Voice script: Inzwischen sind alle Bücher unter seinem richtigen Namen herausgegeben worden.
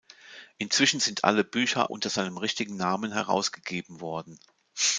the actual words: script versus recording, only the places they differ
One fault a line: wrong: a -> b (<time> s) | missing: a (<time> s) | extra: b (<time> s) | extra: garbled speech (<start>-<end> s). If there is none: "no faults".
no faults